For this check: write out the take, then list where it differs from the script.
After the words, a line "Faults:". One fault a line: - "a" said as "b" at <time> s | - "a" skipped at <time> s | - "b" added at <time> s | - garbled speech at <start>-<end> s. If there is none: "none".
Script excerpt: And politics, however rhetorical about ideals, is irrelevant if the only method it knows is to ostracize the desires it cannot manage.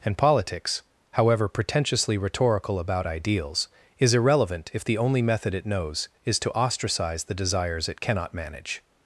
And politics, however pretentiously rhetorical about ideals, is irrelevant if the only method it knows is to ostracize the desires it cannot manage.
Faults:
- "pretentiously" added at 1.5 s